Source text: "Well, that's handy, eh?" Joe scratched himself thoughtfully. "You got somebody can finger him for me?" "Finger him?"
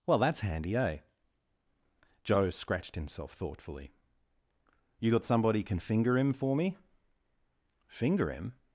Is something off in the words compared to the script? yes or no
no